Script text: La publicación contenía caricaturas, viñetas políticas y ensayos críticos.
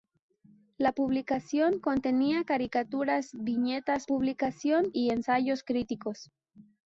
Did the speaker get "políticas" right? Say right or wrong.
wrong